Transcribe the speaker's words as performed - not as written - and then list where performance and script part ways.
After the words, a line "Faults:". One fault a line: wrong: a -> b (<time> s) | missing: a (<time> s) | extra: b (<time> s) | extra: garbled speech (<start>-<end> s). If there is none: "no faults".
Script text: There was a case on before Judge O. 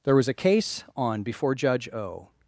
There was a case on before Judge O.
Faults:
no faults